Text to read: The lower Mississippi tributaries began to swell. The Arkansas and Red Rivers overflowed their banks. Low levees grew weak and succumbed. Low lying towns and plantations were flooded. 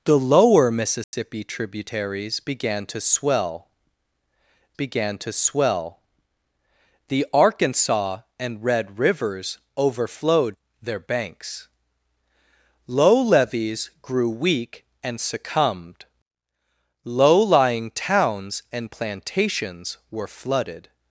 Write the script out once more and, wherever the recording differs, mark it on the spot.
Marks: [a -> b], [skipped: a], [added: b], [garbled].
The lower Mississippi tributaries began to swell. [added: began to swell] The Arkansas and Red Rivers overflowed their banks. Low levees grew weak and succumbed. Low lying towns and plantations were flooded.